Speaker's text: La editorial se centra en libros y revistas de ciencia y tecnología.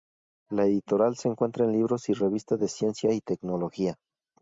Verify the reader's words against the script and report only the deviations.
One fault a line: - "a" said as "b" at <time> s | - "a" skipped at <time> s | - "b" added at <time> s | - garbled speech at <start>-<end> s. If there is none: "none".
none